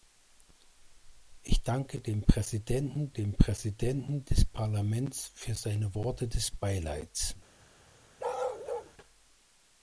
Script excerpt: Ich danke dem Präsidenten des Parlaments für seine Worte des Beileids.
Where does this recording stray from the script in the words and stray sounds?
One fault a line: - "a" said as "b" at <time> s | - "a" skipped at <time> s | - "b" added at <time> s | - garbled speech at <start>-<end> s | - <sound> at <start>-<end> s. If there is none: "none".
- "dem Präsidenten" added at 3.1 s
- bark at 8.2-8.9 s